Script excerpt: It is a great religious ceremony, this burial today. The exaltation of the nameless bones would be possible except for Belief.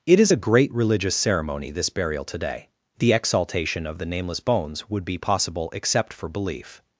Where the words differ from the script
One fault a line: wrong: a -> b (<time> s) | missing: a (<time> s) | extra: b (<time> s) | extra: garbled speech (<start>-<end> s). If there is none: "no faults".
no faults